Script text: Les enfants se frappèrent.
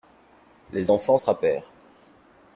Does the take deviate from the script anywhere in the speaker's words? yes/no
yes